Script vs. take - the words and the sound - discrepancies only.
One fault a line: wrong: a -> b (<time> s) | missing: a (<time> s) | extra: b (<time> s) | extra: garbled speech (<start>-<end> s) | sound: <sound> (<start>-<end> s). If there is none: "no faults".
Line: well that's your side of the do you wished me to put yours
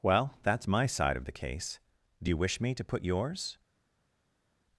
wrong: your -> my (0.7 s)
extra: case (1.3 s)
wrong: wished -> wish (2.4 s)